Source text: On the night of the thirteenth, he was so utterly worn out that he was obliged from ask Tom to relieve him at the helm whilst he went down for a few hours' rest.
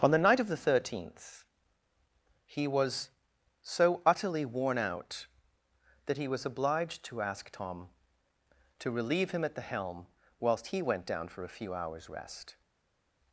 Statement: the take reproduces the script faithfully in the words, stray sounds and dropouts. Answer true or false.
false